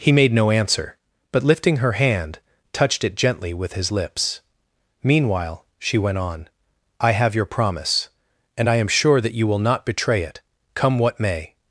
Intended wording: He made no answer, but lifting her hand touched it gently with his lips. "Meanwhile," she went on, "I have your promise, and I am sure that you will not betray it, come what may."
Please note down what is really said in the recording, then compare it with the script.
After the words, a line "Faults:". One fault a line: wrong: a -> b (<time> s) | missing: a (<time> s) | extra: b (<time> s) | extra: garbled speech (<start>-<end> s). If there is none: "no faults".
He made no answer, but lifting her hand touched it gently with his lips. "Meanwhile," she went on, "I have your promise, and I am sure that you will not betray it, come what may."
Faults:
no faults